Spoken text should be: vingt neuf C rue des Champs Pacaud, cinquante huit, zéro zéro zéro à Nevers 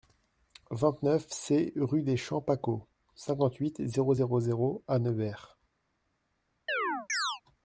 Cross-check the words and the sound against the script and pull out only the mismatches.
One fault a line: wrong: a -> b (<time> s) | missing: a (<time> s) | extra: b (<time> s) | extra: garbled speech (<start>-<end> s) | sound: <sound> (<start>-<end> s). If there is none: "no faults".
sound: chirp (6.7-7.4 s)